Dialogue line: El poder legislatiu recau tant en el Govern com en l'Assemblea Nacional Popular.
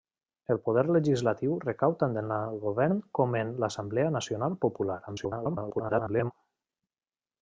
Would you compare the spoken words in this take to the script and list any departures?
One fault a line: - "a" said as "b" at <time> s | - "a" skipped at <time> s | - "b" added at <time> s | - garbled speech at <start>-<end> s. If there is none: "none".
- garbled speech at 5.1-6.3 s